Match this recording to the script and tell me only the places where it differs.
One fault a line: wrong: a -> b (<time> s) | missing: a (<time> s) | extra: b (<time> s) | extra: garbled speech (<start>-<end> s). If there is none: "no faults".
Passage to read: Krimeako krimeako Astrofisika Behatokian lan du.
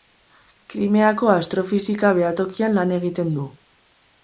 missing: krimeako (1.3 s)
extra: egiten (3.0 s)